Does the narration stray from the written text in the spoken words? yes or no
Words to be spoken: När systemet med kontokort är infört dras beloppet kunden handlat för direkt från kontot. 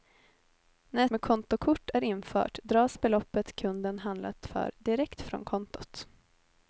yes